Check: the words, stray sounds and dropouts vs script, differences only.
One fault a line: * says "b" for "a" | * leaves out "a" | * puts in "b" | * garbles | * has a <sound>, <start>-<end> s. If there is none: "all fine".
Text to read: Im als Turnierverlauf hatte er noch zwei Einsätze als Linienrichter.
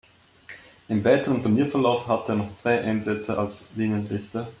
* says "weiteren" for "als"